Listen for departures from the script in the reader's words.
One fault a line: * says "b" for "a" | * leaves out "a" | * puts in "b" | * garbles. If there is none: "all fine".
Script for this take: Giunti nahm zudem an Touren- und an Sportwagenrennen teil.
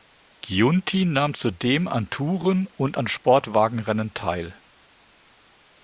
all fine